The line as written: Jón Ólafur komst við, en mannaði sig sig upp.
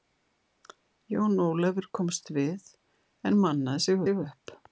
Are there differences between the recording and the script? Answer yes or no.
no